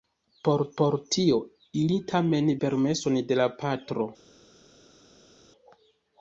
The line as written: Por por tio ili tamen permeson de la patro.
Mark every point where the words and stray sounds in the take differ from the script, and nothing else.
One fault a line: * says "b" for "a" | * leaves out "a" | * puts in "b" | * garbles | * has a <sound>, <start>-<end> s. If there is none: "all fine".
all fine